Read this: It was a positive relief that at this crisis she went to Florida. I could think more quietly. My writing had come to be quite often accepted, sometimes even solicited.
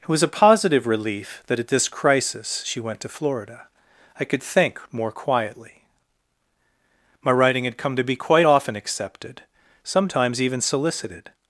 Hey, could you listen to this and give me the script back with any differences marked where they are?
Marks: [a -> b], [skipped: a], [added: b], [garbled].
It was a positive relief that at this crisis she went to Florida. I could think more quietly. My writing had come to be quite often accepted, sometimes even solicited.